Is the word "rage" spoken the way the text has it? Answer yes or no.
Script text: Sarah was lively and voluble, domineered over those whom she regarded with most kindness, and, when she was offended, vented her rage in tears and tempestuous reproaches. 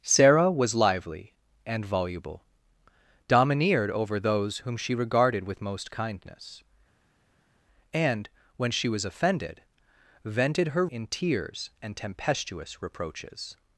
no